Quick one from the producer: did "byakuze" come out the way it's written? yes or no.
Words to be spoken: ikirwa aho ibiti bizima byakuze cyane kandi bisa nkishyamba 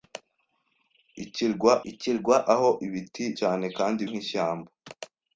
no